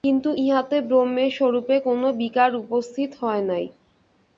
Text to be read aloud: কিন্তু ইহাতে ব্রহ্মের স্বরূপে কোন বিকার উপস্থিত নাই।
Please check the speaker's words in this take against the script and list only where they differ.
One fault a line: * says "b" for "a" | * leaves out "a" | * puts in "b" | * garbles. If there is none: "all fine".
* puts in "হয়"